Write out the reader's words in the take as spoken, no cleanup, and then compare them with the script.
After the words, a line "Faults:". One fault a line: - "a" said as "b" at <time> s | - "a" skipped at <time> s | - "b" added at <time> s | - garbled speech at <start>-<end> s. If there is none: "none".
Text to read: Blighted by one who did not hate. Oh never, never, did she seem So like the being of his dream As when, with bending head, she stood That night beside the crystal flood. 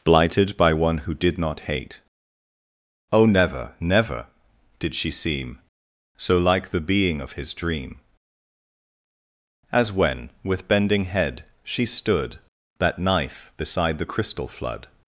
Blighted by one who did not hate. Oh never, never, did she seem So like the being of his dream As when, with bending head, she stood That knife beside the crystal flood.
Faults:
- "night" said as "knife" at 13.0 s